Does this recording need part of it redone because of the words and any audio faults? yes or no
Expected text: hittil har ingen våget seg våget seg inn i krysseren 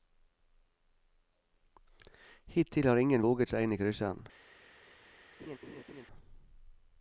yes